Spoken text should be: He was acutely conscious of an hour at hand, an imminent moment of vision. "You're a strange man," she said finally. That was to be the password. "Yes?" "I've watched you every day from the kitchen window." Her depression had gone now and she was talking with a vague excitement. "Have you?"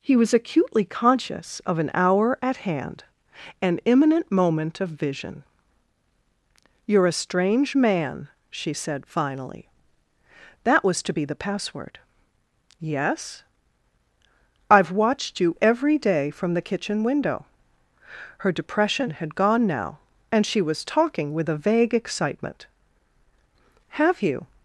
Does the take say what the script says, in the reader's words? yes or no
yes